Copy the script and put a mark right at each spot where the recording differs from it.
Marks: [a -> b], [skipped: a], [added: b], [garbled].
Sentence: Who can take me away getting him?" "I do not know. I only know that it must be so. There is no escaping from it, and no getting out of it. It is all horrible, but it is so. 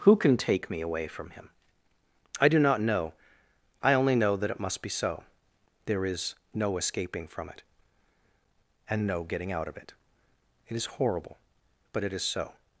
Who can take me away [getting -> from] him?" "I do not know. I only know that it must be so. There is no escaping from it, and no getting out of it. It is [skipped: all] horrible, but it is so.